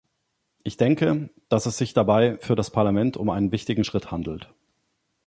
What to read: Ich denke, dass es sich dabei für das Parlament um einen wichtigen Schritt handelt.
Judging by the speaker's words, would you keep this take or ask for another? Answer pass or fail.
pass